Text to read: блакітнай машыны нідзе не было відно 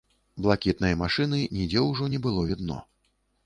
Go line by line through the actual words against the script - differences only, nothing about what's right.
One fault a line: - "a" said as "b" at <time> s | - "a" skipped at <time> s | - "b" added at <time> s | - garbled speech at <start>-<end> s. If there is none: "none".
- "ўжо" added at 1.9 s